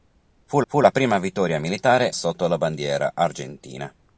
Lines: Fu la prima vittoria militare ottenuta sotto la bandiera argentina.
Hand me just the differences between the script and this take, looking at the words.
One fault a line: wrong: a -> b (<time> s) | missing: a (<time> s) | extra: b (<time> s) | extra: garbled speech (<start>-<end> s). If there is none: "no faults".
extra: fu (0.7 s)
missing: ottenuta (2.1 s)